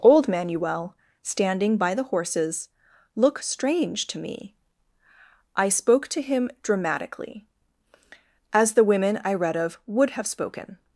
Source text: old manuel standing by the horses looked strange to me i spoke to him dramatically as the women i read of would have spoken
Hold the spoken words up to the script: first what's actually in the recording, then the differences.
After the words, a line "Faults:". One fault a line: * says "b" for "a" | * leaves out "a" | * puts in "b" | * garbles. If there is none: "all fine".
old manuel standing by the horses look strange to me i spoke to him dramatically as the women i read of would have spoken
Faults:
* says "look" for "looked"